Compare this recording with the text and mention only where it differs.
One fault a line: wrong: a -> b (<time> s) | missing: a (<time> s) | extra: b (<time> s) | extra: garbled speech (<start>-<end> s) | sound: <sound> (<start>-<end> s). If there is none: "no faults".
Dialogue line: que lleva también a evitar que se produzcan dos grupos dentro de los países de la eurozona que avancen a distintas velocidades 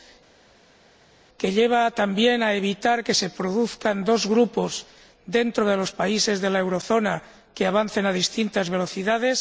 no faults